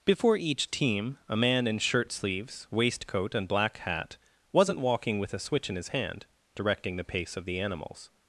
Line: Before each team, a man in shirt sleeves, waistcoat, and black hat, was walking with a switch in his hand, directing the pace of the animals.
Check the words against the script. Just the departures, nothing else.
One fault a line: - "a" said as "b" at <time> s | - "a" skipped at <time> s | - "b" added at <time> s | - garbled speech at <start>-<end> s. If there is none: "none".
- "was" said as "wasn't" at 4.5 s